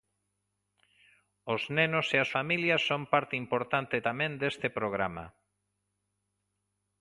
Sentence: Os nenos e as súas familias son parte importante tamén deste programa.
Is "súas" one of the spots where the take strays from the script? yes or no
yes